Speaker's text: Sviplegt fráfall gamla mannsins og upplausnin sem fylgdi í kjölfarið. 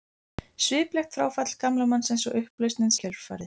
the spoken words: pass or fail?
fail